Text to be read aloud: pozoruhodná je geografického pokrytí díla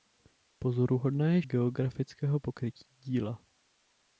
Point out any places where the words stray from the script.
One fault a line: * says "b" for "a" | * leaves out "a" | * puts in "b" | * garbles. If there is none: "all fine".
all fine